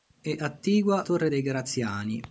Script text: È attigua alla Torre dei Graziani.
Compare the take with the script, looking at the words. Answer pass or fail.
fail